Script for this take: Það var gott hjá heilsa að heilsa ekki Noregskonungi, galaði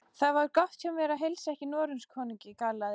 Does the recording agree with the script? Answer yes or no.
no